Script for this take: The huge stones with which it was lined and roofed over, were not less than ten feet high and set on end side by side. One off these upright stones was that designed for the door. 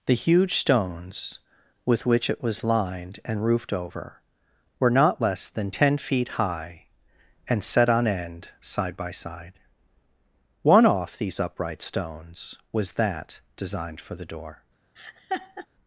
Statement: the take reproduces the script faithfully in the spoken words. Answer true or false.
true